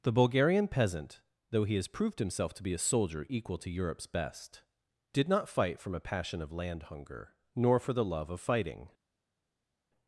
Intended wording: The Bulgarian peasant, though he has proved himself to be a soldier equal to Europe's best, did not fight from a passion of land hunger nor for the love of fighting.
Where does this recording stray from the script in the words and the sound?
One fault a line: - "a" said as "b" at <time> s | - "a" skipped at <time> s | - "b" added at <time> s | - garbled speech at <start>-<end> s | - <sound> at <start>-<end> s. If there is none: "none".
none